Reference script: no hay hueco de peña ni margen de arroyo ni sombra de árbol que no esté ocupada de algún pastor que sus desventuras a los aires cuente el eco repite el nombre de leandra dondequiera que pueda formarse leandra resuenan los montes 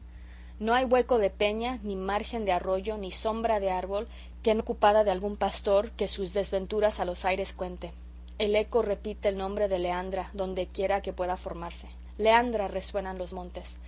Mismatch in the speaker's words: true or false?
true